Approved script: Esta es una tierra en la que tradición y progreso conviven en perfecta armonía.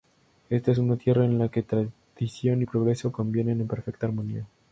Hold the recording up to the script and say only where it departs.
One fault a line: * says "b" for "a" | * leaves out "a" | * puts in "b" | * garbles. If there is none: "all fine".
all fine